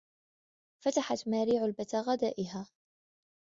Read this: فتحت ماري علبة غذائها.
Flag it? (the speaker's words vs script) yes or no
no